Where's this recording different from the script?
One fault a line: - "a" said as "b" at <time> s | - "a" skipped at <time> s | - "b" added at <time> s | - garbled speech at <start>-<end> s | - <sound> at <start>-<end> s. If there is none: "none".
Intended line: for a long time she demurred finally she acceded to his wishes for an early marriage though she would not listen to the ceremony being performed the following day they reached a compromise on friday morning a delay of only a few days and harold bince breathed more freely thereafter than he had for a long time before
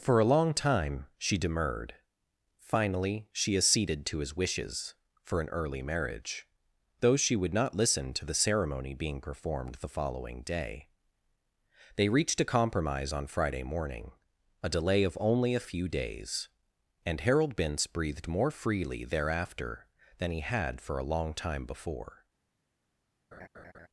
- laugh at 23.3-23.9 s